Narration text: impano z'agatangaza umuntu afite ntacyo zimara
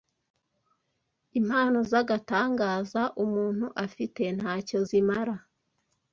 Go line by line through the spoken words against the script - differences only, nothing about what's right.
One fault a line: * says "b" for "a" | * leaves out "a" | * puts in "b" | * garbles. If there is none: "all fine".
all fine